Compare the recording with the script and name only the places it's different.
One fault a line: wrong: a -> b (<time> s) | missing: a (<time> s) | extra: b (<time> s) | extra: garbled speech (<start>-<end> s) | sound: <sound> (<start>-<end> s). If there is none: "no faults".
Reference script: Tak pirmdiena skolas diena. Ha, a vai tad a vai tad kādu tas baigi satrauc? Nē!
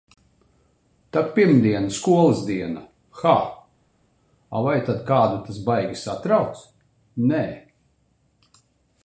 missing: a vai tad (5.0 s)